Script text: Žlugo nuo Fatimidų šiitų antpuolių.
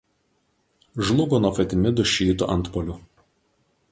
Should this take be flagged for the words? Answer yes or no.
no